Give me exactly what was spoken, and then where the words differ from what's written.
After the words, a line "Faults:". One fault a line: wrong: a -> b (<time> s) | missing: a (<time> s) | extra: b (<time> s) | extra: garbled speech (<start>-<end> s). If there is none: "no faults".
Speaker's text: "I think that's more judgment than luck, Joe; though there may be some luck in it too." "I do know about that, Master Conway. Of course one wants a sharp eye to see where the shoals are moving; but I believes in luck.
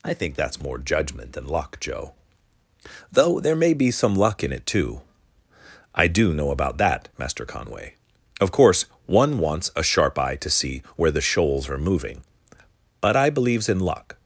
"I think that's more judgment than luck, Joe; though there may be some luck in it too." "I do know about that, Master Conway. Of course one wants a sharp eye to see where the shoals are moving; but I believes in luck.
Faults:
no faults